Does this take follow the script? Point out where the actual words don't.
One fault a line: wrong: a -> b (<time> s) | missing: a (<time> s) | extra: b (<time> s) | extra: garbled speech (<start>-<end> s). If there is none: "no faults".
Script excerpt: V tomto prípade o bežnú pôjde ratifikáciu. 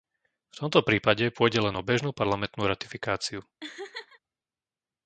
extra: pôjde len (1.3 s)
wrong: pôjde -> parlamentnú (2.2 s)